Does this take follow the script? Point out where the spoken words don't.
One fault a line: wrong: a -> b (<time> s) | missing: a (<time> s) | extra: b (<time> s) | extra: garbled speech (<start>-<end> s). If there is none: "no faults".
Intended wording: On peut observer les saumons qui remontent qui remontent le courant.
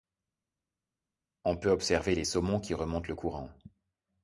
missing: qui remontent (3.1 s)